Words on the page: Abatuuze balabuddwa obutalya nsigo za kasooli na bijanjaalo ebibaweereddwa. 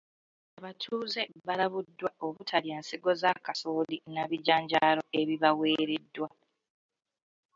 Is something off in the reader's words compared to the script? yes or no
no